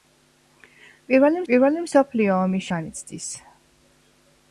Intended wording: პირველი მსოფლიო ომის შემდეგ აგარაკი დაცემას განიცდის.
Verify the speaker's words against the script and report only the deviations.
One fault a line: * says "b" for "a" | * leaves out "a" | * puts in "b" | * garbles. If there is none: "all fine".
* puts in "პირველი"
* leaves out "შემდეგ აგარაკი დაცემას"